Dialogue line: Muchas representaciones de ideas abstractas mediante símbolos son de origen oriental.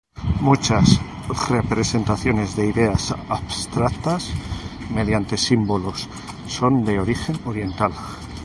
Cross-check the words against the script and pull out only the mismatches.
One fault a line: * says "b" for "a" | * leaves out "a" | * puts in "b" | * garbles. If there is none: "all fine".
all fine